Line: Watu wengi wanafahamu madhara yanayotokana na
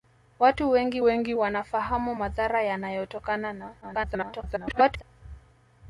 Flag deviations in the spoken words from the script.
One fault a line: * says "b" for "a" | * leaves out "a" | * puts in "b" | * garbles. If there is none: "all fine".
* puts in "wengi"
* garbles